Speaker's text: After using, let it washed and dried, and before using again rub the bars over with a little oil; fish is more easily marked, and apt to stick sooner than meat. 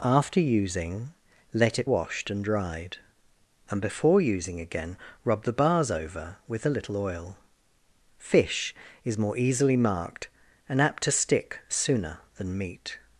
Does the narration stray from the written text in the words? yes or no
no